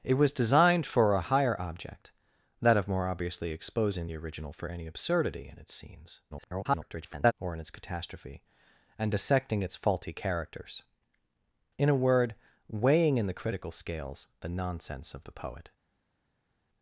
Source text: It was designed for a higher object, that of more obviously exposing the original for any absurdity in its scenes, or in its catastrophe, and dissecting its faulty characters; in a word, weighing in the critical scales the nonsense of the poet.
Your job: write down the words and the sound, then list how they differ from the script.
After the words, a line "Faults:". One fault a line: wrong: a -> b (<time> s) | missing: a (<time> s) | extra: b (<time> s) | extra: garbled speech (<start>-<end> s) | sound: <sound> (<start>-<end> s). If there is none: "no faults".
It was designed for a higher object, that of more obviously exposing the original for any absurdity in its scenes, [garbled] or in its catastrophe, and dissecting its faulty characters; in a word, weighing in the critical scales the nonsense of the poet.
Faults:
extra: garbled speech (6.3-7.3 s)